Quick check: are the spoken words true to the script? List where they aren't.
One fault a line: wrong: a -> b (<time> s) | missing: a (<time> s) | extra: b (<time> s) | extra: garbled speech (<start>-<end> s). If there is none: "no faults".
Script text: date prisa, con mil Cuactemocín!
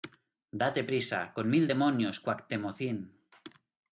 extra: demonios (1.6 s)